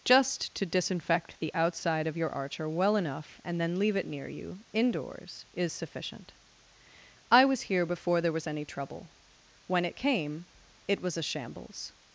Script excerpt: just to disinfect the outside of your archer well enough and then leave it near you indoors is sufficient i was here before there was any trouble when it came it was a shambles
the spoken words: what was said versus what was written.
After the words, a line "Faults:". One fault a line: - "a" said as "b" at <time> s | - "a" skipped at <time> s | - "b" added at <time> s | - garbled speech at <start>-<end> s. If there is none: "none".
just to disinfect the outside of your archer well enough and then leave it near you indoors is sufficient i was here before there was any trouble when it came it was a shambles
Faults:
none